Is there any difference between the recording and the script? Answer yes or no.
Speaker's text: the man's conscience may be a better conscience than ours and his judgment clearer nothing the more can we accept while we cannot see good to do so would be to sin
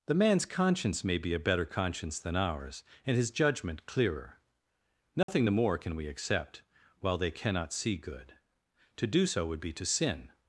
yes